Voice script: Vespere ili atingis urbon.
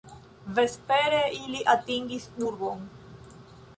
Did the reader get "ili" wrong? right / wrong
right